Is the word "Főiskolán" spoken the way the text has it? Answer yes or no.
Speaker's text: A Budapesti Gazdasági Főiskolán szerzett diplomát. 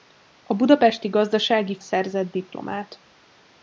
no